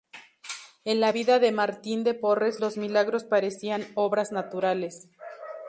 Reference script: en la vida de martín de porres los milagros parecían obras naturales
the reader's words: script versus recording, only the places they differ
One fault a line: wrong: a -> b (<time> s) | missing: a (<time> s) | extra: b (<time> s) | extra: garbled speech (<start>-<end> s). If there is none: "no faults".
no faults